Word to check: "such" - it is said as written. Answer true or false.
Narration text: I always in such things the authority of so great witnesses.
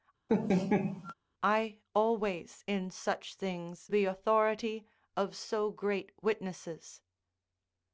true